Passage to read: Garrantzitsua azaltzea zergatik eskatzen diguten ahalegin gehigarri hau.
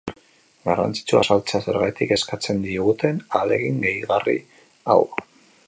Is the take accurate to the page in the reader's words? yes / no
yes